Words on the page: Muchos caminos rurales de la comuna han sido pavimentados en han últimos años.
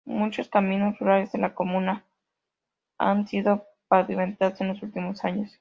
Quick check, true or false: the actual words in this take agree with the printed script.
false